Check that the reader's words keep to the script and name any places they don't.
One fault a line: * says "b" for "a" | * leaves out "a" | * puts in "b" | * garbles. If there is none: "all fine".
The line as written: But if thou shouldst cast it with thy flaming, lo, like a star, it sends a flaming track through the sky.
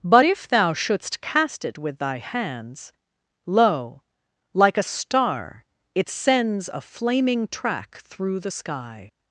* says "hands" for "flaming"